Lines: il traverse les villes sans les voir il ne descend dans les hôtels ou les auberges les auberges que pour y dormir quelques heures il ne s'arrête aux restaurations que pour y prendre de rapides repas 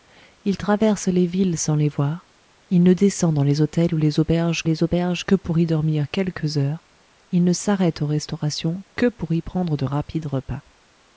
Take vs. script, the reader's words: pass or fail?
pass